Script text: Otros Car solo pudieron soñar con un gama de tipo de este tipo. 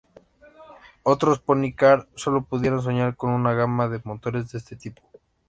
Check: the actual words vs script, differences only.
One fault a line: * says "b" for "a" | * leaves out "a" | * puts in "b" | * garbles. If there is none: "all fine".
* puts in "Pony"
* says "una" for "un"
* says "motores" for "tipo"